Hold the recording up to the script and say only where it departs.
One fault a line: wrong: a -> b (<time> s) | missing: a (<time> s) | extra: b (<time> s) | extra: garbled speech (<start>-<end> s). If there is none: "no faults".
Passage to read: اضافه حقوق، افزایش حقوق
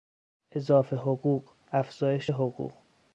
no faults